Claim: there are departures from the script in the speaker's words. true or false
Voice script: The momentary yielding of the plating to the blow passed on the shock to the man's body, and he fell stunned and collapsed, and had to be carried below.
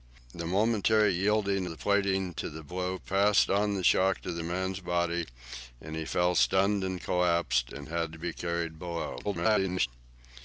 true